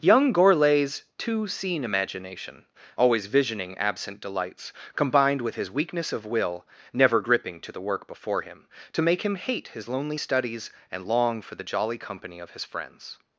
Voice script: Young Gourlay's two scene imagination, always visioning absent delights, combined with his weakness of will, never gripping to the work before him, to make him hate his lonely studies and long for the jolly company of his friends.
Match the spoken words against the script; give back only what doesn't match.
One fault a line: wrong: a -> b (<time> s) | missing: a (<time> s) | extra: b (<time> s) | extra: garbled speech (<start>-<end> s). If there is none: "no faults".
no faults